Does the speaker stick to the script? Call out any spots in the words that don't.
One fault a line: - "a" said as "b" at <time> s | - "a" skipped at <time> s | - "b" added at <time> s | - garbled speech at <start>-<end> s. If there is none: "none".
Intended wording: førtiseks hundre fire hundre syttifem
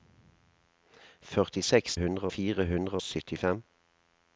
none